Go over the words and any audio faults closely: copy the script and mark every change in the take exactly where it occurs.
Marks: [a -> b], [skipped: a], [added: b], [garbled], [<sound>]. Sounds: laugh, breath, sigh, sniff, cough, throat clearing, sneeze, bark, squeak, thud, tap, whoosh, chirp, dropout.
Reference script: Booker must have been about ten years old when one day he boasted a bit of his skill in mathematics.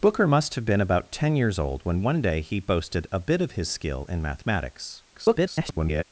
Booker must have been about ten years old when one day he boasted a bit of his skill in mathematics. [garbled]